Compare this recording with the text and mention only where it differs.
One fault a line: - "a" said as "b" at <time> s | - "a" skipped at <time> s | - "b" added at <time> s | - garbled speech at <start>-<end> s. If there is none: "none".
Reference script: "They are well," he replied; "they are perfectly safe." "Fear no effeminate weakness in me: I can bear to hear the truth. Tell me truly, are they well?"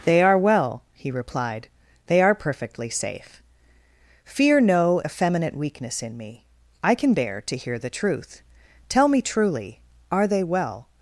none